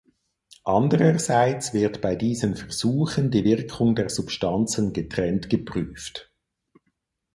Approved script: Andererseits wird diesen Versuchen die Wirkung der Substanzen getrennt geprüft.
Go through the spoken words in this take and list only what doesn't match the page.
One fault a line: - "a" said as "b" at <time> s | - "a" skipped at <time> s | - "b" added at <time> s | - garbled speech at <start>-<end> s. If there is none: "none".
- "bei" added at 2.0 s